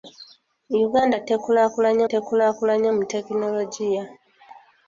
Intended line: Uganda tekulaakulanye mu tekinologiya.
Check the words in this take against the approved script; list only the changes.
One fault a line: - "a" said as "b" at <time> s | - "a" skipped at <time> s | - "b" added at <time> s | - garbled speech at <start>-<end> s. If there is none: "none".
- "tekulaakulanye" added at 2.1 s